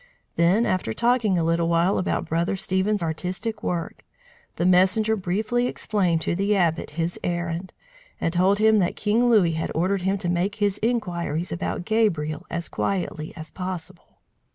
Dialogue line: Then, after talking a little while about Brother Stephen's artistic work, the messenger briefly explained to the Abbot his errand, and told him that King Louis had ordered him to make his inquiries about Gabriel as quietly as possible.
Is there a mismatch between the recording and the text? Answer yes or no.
no